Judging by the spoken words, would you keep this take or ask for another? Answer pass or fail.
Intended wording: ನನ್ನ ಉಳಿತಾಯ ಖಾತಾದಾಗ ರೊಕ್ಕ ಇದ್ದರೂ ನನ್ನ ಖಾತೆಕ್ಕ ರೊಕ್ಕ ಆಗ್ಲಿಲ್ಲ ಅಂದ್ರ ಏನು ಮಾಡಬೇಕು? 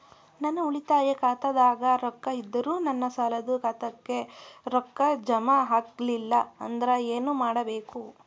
fail